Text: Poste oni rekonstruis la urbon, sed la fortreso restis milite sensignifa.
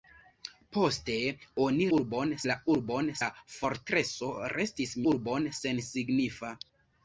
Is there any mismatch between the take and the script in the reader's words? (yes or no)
yes